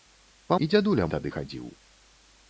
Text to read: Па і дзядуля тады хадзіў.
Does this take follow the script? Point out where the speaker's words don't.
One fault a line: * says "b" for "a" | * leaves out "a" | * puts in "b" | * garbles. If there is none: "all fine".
all fine